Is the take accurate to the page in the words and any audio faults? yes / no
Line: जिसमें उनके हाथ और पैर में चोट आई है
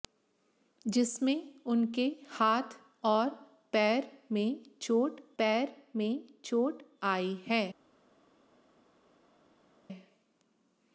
no